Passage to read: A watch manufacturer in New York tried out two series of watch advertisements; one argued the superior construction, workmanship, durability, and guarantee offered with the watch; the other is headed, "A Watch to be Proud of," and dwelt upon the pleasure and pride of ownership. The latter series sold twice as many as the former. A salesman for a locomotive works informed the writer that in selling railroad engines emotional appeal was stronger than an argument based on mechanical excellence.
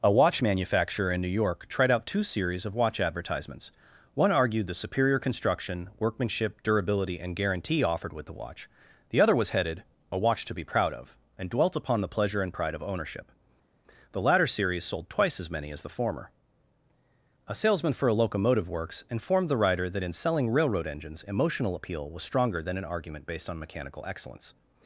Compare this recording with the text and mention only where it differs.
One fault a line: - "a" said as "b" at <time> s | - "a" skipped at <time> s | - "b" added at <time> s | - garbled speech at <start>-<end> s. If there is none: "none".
- "is" said as "was" at 9.4 s